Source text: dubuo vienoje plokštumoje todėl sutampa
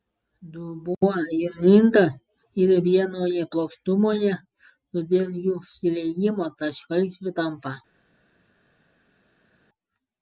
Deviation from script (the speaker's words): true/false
true